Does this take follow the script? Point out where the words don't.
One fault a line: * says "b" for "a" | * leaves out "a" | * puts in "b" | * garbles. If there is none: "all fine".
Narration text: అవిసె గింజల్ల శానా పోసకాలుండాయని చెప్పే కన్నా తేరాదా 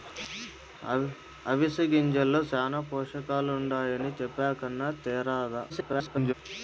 * garbles